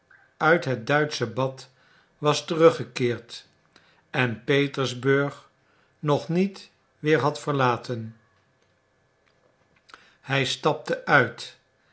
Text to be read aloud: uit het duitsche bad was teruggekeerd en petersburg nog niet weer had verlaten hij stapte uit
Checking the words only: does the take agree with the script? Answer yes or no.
yes